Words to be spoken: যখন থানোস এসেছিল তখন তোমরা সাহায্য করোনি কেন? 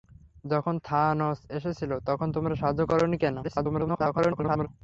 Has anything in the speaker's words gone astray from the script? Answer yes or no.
yes